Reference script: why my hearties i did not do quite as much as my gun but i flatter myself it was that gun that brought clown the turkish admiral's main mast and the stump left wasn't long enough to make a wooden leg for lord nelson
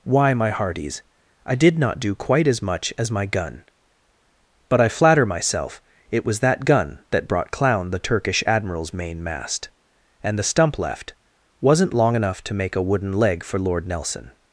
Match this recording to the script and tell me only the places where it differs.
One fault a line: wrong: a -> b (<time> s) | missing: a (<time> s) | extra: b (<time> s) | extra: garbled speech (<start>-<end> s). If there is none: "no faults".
no faults